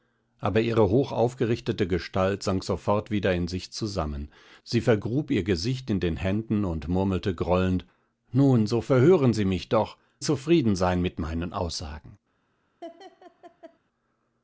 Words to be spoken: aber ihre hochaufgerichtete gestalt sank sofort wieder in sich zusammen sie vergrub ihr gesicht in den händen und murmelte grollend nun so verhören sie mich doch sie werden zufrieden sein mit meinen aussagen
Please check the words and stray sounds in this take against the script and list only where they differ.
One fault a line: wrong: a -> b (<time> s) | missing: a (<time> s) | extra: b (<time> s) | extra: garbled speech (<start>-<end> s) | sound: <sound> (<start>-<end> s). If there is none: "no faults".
missing: sie werden (10.0 s)
sound: laugh (12.8-13.8 s)